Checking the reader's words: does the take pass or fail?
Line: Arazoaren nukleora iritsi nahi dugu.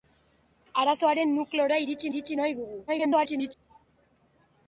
fail